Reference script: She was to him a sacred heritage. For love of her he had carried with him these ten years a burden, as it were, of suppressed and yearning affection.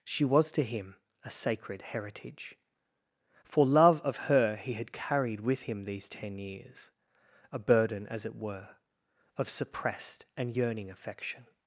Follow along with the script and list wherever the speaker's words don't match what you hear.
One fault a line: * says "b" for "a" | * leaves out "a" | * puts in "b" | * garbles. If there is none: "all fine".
all fine